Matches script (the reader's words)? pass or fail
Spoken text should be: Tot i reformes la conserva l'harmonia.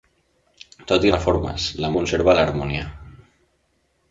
pass